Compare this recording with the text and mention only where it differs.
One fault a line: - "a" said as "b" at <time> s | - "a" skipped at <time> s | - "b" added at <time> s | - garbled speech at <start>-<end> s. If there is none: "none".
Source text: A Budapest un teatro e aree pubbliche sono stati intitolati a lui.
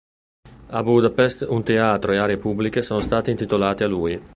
none